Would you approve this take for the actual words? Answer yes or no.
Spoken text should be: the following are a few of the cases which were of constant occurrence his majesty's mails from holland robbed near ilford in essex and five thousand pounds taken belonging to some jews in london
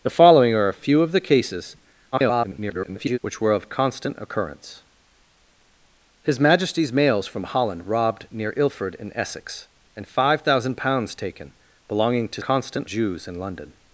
no